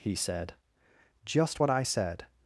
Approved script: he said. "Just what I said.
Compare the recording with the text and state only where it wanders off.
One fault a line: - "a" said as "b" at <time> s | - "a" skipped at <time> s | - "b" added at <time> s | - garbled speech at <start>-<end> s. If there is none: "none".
none